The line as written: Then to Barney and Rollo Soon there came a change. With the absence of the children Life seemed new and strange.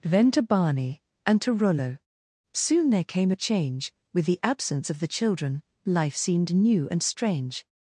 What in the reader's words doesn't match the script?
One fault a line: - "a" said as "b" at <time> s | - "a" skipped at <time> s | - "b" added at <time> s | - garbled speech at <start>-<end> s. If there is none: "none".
- "to" added at 1.4 s